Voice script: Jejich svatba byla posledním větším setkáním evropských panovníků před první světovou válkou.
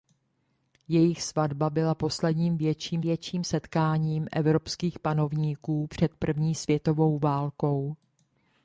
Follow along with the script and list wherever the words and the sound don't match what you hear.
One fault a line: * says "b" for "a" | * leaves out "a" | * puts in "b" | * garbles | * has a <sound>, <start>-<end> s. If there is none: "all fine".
* puts in "větším"